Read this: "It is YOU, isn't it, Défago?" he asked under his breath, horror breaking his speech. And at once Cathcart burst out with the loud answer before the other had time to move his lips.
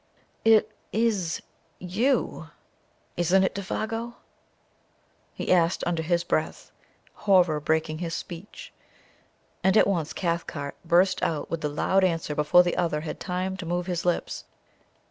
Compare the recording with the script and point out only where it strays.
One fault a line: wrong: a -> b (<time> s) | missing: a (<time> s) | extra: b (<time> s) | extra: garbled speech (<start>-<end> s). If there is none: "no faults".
no faults